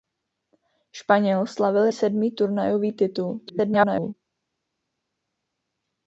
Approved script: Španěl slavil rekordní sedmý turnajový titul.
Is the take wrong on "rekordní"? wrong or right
wrong